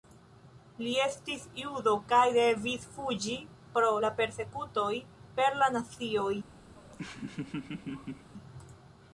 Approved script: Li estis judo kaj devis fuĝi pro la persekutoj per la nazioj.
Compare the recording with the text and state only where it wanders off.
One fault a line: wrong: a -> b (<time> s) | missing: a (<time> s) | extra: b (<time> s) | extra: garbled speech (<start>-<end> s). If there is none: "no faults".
no faults